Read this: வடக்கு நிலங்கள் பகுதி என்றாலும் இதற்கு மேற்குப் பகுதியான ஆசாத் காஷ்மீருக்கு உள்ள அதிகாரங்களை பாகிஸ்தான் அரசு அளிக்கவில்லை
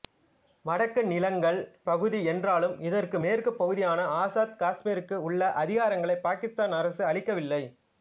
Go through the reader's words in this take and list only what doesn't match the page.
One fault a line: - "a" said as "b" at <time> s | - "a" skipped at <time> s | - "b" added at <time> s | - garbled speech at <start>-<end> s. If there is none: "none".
none